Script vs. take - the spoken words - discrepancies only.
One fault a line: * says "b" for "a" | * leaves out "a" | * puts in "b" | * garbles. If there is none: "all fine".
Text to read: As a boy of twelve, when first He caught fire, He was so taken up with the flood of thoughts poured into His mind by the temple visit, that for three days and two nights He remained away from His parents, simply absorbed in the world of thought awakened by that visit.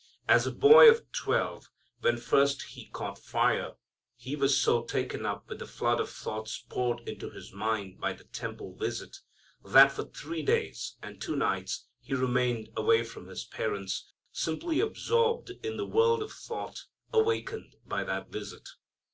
all fine